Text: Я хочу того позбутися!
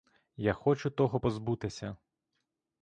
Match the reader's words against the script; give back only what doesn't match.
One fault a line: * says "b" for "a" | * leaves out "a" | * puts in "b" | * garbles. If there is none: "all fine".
all fine